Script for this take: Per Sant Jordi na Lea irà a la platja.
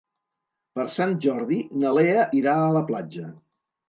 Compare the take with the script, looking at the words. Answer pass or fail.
pass